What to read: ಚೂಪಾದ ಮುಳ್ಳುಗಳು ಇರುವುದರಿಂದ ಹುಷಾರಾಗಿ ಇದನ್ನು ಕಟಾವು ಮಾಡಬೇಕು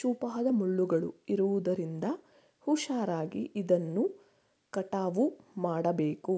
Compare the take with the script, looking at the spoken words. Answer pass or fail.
pass